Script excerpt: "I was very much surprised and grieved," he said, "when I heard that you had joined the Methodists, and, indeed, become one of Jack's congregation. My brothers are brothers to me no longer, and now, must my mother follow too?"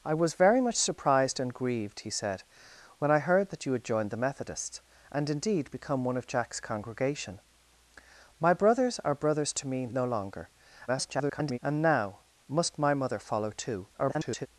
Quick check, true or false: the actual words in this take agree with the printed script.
false